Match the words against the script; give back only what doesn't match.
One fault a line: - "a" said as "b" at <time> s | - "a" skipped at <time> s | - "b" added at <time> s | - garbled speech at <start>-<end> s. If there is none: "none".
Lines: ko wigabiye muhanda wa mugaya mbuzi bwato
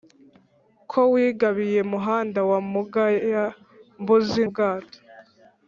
none